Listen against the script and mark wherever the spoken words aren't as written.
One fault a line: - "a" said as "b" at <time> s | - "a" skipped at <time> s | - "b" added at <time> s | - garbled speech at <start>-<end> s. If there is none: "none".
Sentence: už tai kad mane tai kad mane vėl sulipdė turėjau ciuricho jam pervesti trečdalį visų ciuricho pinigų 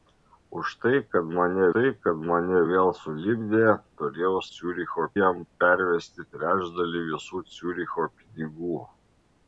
none